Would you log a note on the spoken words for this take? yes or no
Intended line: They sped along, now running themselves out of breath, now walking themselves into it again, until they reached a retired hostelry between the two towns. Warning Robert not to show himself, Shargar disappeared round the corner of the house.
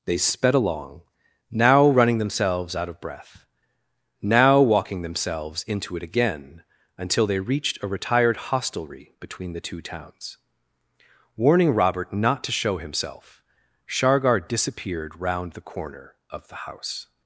no